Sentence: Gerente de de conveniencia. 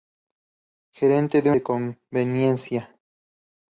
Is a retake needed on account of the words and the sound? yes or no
no